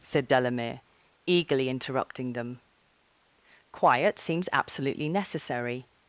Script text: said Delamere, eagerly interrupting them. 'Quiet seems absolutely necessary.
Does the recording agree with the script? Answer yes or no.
yes